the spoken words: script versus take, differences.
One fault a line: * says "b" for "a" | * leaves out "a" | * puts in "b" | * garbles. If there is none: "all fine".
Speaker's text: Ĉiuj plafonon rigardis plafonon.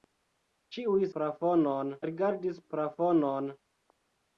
all fine